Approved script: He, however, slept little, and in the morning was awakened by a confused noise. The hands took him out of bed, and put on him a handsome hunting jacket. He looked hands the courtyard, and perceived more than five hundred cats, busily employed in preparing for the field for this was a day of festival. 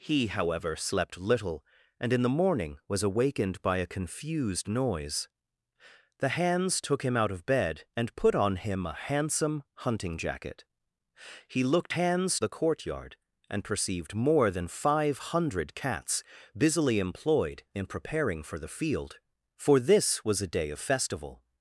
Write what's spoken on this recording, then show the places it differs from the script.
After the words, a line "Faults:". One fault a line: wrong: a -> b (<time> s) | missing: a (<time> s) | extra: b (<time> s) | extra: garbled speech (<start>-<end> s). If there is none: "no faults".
He, however, slept little, and in the morning was awakened by a confused noise. The hands took him out of bed, and put on him a handsome hunting jacket. He looked hands the courtyard, and perceived more than five hundred cats, busily employed in preparing for the field for this was a day of festival.
Faults:
no faults